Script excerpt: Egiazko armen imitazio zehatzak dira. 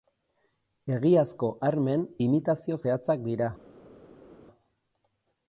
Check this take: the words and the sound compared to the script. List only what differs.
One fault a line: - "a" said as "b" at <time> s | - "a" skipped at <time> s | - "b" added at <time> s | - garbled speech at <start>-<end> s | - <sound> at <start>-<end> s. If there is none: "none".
none